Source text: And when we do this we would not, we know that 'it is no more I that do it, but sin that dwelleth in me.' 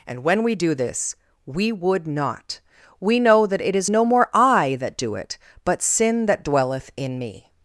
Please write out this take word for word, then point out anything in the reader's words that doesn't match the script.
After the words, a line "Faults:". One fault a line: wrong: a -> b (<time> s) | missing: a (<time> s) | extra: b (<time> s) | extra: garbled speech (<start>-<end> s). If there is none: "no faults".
And when we do this we would not, we know that 'it is no more I that do it, but sin that dwelleth in me.'
Faults:
no faults